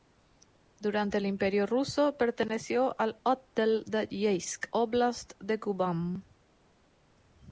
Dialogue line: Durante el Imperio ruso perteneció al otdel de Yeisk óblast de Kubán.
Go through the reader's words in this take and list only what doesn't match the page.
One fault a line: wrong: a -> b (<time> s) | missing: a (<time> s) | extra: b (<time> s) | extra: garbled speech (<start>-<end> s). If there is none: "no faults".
no faults